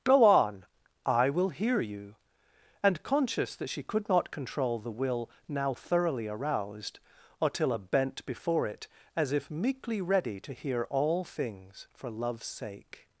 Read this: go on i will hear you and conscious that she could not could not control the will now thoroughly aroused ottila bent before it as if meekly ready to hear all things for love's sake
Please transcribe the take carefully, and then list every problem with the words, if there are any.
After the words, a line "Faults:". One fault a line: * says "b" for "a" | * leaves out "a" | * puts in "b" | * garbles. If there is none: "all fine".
go on i will hear you and conscious that she could not control the will now thoroughly aroused ottila bent before it as if meekly ready to hear all things for love's sake
Faults:
* leaves out "could not"